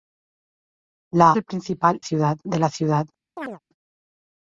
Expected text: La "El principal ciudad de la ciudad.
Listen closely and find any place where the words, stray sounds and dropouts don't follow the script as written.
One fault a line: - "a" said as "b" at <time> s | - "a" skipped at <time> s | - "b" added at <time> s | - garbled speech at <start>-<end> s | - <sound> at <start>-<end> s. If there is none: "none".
- chirp at 3.4-3.6 s